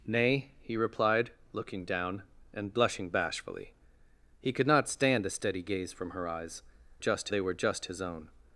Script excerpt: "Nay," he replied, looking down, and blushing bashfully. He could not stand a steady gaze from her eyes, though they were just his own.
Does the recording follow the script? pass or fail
fail